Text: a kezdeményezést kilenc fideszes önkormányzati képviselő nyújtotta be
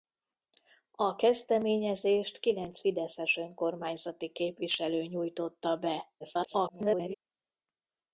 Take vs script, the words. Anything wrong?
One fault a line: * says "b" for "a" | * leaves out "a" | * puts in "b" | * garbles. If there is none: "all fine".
* garbles